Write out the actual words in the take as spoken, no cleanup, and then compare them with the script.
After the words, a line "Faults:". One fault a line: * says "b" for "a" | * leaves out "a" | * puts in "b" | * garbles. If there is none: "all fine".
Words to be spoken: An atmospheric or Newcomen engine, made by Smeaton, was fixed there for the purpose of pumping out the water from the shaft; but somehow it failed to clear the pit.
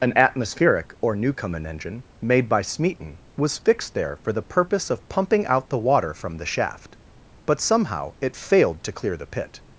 An atmospheric or Newcomen engine, made by Smeaton, was fixed there for the purpose of pumping out the water from the shaft; but somehow it failed to clear the pit.
Faults:
all fine